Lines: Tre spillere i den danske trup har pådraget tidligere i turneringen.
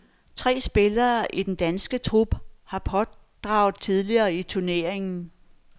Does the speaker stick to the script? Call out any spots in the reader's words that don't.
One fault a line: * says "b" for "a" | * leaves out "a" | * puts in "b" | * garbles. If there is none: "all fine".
all fine